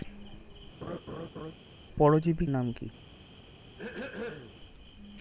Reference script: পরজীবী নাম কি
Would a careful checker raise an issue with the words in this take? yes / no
no